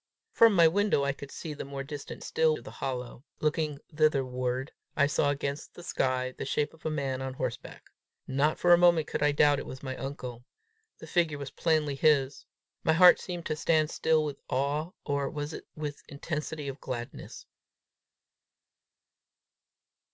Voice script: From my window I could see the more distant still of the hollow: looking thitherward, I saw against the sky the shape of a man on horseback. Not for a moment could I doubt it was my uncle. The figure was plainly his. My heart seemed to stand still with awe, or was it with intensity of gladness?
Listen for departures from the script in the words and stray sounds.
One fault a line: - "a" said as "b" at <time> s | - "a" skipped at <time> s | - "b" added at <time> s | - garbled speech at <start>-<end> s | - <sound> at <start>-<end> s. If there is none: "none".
none